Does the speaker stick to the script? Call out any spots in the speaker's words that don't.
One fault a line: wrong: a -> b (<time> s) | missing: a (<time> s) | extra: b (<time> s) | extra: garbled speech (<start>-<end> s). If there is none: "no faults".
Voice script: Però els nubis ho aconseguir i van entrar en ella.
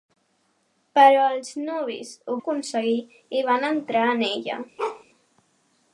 no faults